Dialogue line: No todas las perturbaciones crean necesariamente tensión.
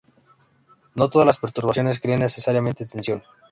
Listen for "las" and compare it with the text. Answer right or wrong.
right